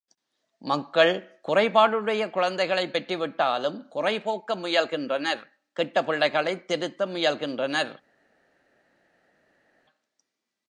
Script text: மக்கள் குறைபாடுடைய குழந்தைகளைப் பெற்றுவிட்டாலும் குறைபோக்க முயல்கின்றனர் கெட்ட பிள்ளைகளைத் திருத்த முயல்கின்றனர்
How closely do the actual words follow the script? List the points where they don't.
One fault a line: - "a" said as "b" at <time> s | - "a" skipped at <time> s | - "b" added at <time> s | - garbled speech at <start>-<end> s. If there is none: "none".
none